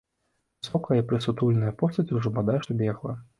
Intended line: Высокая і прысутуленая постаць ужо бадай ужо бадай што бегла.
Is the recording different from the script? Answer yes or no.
yes